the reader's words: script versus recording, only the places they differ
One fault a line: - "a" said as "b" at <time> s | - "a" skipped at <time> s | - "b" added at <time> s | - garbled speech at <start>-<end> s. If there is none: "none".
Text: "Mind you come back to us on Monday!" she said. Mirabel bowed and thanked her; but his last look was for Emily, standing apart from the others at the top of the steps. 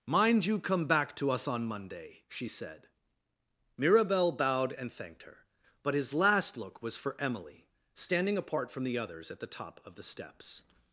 none